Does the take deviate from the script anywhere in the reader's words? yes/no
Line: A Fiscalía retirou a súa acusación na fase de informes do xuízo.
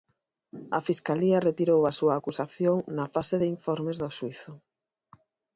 no